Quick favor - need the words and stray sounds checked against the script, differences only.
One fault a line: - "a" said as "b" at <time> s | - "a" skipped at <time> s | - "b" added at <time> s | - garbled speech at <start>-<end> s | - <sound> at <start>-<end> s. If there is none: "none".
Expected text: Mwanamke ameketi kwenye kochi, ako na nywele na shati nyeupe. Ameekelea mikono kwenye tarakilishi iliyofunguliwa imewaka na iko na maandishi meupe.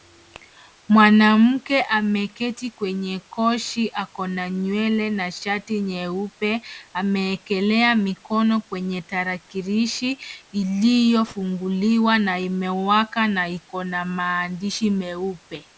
- "na" added at 12.2 s